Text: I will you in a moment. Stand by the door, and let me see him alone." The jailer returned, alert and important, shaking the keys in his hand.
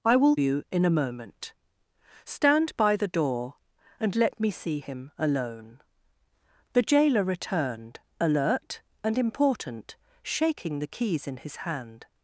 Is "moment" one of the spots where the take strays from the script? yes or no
no